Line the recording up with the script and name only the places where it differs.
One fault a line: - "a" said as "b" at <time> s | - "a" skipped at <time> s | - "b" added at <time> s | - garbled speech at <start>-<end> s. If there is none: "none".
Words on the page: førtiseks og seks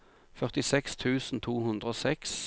- "tusen to hundre" added at 0.9 s